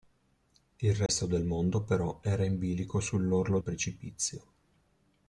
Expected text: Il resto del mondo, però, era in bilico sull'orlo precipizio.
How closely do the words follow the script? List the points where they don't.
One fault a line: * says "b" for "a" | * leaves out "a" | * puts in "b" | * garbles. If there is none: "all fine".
all fine